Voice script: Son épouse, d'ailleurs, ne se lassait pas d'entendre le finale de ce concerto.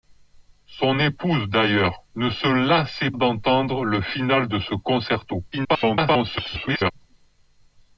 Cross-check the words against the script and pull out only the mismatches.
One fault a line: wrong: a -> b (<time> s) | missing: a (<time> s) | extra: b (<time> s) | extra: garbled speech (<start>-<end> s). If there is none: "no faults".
missing: pas (3.1 s)
extra: garbled speech (5.5-6.9 s)